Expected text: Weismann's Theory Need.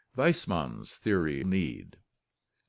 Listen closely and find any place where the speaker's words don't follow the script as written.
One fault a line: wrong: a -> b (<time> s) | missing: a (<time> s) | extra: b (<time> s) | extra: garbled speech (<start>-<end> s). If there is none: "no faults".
no faults